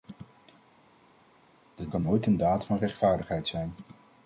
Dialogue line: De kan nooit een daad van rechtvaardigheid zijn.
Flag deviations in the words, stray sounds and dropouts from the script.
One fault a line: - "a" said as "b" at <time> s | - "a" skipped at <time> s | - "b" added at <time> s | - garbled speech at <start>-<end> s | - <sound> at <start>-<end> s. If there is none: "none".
none